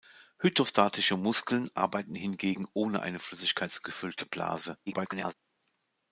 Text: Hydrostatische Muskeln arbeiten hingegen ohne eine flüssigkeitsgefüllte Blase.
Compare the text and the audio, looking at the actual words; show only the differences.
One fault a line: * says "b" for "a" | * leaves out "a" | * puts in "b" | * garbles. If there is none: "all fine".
* garbles